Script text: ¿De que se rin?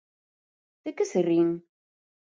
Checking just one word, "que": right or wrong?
right